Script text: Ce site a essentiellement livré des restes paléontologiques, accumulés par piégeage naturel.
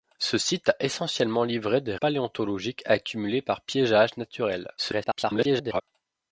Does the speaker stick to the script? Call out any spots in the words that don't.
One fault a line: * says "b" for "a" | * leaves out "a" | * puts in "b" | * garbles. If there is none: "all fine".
* leaves out "restes"
* garbles